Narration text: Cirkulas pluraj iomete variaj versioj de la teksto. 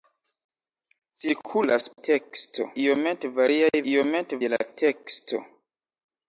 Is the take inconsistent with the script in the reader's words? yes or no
yes